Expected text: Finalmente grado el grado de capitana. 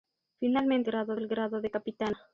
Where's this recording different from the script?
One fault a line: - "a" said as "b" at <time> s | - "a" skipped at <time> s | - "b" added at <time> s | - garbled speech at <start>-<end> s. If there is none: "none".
none